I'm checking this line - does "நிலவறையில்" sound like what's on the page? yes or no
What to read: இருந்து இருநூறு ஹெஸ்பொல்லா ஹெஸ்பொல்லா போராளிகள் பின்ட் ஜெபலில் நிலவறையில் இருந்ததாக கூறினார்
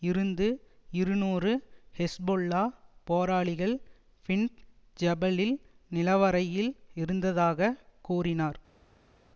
yes